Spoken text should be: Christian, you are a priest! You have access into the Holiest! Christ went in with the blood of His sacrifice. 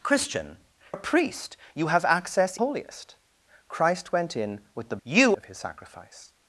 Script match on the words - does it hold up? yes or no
no